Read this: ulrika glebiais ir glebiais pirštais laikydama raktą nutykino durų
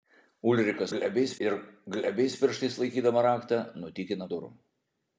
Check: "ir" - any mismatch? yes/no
no